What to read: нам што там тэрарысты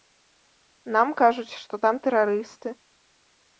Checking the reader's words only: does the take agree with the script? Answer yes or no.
no